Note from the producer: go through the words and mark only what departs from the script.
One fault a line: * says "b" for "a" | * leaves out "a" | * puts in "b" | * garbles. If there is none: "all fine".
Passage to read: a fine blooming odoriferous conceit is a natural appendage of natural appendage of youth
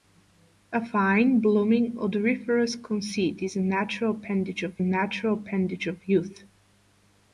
all fine